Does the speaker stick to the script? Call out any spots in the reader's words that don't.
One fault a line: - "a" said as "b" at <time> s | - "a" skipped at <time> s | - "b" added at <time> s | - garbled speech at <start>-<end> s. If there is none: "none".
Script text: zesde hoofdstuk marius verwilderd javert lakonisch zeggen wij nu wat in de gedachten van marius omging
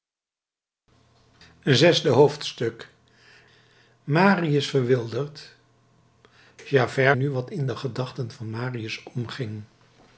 - "lakonisch zeggen wij" skipped at 7.2 s